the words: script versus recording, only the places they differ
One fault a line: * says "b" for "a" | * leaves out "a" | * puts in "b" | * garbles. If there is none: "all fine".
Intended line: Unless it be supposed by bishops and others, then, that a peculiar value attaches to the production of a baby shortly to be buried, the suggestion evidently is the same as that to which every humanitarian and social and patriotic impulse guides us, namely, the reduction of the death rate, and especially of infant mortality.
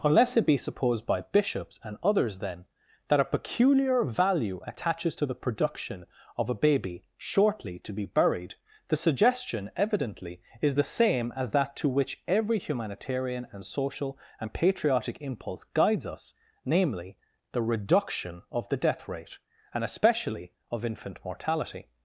all fine